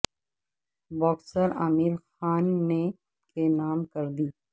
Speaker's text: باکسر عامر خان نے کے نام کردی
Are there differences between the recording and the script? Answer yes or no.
no